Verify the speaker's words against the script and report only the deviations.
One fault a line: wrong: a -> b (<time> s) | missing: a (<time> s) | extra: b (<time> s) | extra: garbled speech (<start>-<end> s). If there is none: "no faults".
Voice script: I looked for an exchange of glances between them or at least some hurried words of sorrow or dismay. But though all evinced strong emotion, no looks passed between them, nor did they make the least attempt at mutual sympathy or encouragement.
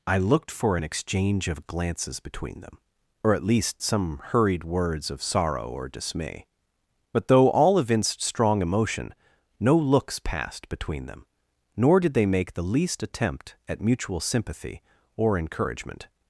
no faults